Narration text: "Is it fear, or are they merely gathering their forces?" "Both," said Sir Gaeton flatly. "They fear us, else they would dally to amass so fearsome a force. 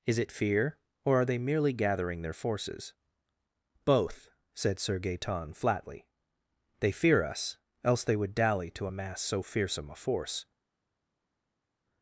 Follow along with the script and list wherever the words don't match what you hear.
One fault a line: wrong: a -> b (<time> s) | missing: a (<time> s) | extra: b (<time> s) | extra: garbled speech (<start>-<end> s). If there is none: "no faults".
no faults